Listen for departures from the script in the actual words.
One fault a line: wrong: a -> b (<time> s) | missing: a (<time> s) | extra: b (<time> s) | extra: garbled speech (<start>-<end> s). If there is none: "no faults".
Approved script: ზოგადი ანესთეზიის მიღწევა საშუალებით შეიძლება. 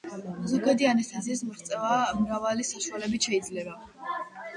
extra: მრავალი (2.2 s)